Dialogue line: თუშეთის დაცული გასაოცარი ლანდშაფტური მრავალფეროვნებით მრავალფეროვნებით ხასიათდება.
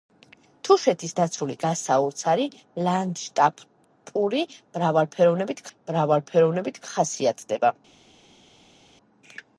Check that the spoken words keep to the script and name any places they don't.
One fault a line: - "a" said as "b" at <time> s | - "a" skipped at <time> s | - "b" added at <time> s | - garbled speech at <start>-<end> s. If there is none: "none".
none